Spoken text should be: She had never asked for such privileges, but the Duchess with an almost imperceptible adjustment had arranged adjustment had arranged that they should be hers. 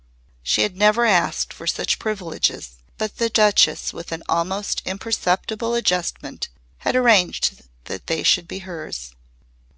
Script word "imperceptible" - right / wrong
right